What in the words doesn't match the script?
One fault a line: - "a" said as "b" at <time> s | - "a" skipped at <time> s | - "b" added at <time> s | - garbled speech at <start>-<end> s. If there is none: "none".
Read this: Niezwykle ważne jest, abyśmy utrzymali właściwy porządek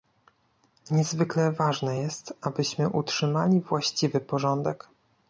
none